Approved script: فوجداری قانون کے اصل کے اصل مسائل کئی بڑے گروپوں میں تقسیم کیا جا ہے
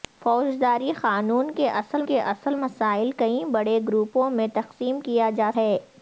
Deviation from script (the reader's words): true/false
false